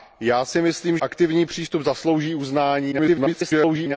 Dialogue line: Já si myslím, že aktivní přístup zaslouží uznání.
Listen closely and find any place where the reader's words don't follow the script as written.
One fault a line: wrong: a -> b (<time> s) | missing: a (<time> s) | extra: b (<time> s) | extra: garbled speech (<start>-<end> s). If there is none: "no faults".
missing: že (1.0 s)
extra: garbled speech (2.9-4.0 s)